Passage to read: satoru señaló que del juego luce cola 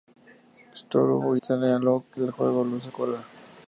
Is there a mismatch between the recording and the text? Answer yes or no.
no